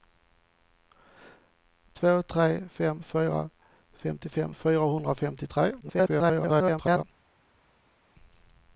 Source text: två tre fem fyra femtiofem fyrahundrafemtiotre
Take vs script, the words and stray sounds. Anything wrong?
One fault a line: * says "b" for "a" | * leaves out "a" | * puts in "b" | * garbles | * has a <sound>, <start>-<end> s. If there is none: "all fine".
* garbles